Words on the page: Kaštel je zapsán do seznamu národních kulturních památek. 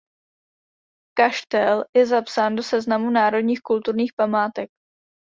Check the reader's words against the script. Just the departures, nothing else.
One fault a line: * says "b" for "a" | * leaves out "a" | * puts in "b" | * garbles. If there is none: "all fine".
all fine